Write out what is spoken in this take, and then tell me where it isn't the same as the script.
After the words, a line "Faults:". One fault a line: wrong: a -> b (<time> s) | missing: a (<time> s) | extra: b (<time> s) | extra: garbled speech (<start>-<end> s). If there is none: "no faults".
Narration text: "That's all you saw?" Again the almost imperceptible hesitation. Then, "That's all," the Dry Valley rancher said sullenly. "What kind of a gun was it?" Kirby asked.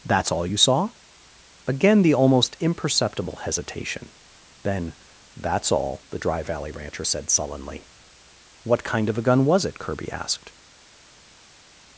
"That's all you saw?" Again the almost imperceptible hesitation. Then, "That's all," the Dry Valley rancher said sullenly. "What kind of a gun was it?" Kirby asked.
Faults:
no faults